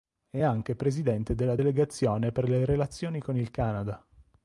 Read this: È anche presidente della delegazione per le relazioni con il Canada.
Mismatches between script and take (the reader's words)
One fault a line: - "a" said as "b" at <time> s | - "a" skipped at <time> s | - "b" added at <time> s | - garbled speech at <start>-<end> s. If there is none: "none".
none